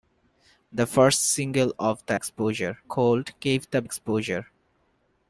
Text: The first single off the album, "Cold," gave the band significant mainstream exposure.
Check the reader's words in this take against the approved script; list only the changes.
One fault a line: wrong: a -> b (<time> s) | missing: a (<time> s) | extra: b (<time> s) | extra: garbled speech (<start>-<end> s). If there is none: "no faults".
wrong: album -> exposure (2.1 s)
missing: band significant mainstream (3.8 s)